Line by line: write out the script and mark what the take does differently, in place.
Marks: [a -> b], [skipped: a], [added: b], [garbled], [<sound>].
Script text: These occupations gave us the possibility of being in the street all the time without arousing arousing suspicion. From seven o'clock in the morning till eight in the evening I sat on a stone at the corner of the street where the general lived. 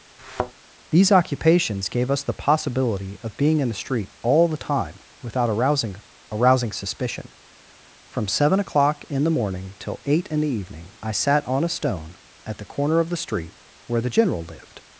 [thud] These occupations gave us the possibility of being in the street all the time without arousing arousing suspicion. From seven o'clock in the morning till eight in the evening I sat on a stone at the corner of the street where the general lived.